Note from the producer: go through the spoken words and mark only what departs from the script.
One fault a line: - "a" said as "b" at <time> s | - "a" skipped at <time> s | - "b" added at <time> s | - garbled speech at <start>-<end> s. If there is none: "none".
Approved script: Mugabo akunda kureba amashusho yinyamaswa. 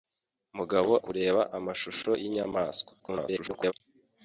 - "akunda" skipped at 0.9 s
- garbled speech at 3.0-3.7 s